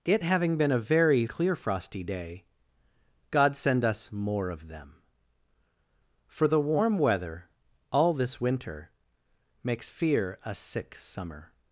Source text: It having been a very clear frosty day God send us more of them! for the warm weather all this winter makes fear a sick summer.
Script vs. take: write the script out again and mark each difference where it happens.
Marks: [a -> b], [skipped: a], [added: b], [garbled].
It having been a very clear frosty day God send us more of them! for the warm weather all this winter makes fear a sick summer.